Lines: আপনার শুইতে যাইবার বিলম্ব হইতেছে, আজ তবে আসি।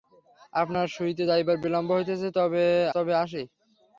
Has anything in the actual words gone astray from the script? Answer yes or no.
yes